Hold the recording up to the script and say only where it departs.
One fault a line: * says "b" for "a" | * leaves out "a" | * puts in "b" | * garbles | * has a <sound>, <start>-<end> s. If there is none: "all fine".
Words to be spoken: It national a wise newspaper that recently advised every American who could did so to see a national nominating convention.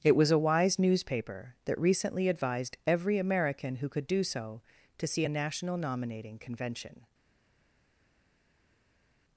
* says "was" for "national"
* says "do" for "did"